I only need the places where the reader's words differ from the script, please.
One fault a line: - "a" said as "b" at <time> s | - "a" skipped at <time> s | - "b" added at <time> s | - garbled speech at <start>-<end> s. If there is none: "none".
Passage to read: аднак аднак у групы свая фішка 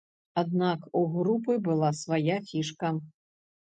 - "аднак" skipped at 0.9 s
- "была" added at 1.7 s